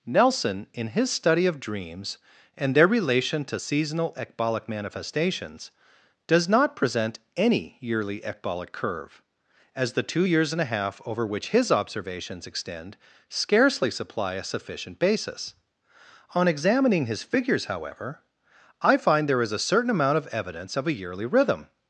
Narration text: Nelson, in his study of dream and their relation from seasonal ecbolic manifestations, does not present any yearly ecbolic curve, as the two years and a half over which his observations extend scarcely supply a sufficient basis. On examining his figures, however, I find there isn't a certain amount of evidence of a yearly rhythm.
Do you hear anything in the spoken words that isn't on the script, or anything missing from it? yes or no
yes